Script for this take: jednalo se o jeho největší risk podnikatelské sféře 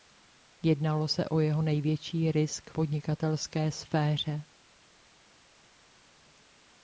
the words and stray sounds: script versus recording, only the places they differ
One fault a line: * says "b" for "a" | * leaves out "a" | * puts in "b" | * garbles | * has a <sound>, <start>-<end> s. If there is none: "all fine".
all fine